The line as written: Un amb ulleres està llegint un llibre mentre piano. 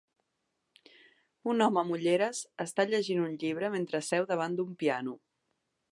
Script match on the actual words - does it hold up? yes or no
no